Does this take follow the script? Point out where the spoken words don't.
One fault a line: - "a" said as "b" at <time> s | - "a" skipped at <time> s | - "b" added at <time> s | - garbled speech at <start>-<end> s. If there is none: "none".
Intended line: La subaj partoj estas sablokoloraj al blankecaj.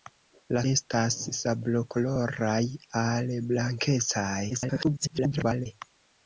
- "subaj partoj" skipped at 0.6 s
- garbled speech at 4.5-5.7 s